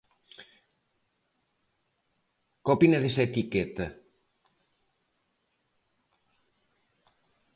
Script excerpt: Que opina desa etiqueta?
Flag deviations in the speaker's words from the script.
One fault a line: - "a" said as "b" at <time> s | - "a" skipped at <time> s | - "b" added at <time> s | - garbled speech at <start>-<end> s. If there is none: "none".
none